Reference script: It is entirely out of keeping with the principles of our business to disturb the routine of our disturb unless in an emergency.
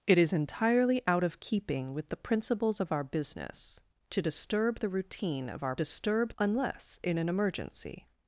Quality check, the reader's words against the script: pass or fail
pass